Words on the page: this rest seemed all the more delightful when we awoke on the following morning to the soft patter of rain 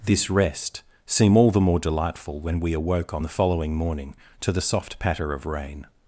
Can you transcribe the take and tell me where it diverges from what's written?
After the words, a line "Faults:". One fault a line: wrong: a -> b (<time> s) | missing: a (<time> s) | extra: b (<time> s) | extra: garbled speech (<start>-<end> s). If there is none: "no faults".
this rest seem all the more delightful when we awoke on the following morning to the soft patter of rain
Faults:
wrong: seemed -> seem (1.1 s)